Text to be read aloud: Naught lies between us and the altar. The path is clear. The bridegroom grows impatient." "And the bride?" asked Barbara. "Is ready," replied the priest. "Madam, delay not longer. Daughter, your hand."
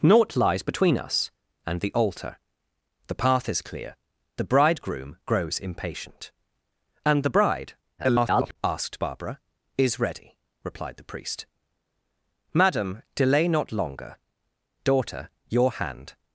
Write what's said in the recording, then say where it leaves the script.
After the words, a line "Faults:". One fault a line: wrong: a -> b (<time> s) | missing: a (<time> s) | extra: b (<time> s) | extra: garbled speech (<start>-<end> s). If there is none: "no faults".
Naught lies between us and the altar. The path is clear. The bridegroom grows impatient." "And the bride?" [garbled] asked Barbara. "Is ready," replied the priest. "Madam, delay not longer. Daughter, your hand."
Faults:
extra: garbled speech (8.0-8.6 s)